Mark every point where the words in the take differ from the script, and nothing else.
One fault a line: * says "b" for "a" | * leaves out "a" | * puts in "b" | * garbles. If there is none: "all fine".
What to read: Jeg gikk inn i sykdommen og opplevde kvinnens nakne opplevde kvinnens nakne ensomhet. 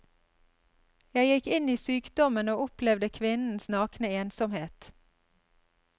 * leaves out "opplevde kvinnens nakne"